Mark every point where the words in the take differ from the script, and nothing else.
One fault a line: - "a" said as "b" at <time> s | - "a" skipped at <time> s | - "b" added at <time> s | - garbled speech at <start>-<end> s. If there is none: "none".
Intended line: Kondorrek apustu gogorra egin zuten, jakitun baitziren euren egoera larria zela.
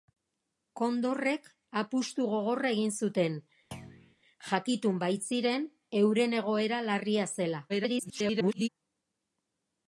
- garbled speech at 7.7-8.7 s